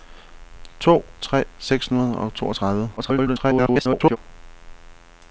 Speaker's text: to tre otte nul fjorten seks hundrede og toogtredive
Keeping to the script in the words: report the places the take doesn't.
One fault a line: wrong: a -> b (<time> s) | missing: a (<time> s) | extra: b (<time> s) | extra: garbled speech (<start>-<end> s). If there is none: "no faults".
missing: otte nul fjorten (1.4 s)
extra: garbled speech (3.0-4.2 s)